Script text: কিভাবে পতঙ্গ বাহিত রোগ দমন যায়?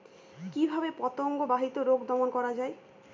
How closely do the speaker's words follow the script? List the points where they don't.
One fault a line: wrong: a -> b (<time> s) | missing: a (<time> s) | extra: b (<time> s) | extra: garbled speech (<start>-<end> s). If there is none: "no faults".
extra: করা (2.3 s)